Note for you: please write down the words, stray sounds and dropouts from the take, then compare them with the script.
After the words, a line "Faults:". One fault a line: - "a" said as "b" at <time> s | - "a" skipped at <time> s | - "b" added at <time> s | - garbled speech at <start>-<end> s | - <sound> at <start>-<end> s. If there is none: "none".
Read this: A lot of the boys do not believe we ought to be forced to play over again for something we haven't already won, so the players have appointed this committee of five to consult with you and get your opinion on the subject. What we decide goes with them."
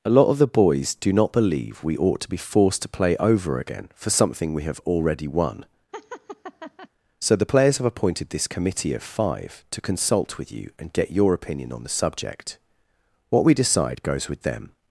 A lot of the boys do not believe we ought to be forced to play over again for something we have already won, so the players have appointed this committee of five to consult with you and get your opinion on the subject. What we decide goes with them."
Faults:
- "haven't" said as "have" at 4.6 s
- laugh at 5.9-6.9 s